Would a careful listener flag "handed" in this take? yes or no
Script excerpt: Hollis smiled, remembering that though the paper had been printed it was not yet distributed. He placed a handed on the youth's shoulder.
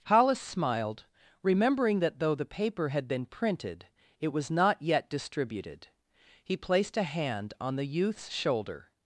yes